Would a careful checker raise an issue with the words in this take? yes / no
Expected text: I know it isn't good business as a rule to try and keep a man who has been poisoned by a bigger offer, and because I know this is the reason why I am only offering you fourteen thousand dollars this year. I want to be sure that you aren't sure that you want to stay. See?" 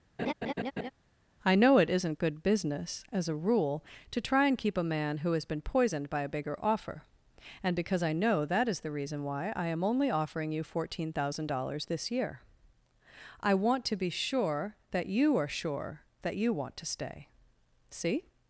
yes